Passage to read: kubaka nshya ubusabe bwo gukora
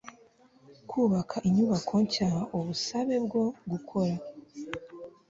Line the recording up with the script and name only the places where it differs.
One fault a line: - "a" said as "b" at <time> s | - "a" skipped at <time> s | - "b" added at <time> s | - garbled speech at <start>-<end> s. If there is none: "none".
- "inyubako" added at 1.5 s